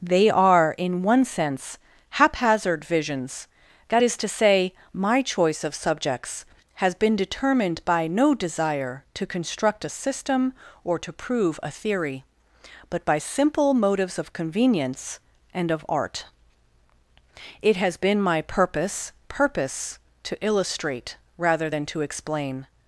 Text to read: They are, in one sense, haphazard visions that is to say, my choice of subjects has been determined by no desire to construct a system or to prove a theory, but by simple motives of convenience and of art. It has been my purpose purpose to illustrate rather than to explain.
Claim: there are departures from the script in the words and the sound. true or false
false